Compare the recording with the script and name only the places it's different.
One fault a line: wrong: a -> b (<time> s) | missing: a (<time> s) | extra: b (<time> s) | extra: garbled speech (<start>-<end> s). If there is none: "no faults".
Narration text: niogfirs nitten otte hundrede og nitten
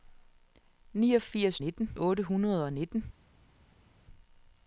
no faults